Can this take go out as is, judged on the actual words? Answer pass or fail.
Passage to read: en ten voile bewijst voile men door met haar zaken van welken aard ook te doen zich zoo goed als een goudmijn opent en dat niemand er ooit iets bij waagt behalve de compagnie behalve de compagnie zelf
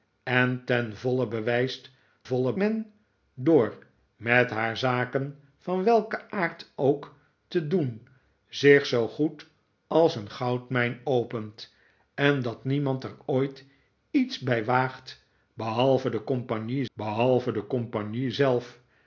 pass